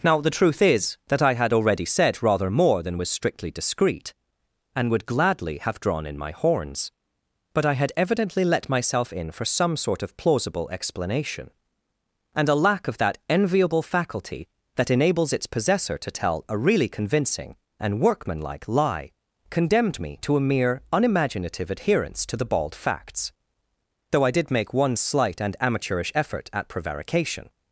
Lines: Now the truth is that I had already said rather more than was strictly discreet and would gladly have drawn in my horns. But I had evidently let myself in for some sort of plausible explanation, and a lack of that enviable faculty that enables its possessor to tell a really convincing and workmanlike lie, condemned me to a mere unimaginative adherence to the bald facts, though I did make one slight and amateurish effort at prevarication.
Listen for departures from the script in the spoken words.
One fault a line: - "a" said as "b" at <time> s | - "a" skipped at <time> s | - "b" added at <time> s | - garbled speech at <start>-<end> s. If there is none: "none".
none